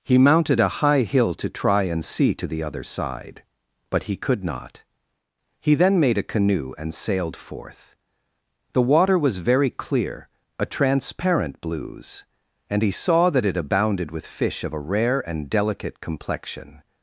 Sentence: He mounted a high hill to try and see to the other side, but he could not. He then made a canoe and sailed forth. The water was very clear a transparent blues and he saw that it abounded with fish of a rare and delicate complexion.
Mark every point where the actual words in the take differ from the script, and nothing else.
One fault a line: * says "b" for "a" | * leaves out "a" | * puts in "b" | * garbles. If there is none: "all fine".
all fine